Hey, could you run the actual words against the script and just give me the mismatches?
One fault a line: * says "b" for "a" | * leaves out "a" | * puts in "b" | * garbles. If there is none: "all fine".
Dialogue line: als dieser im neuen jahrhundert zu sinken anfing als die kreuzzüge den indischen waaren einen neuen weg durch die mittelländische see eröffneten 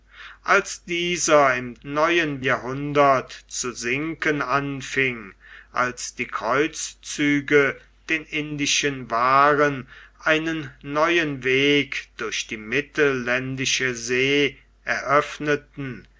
all fine